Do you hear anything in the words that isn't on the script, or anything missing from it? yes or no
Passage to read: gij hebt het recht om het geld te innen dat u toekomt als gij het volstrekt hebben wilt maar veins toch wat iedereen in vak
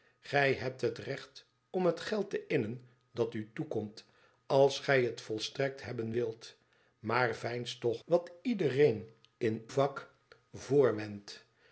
no